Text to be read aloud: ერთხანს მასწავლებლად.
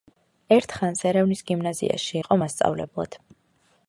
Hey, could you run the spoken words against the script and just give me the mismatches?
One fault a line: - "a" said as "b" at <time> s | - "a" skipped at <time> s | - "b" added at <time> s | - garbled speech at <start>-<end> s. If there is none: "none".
- "ერევნის გიმნაზიაში იყო" added at 1.1 s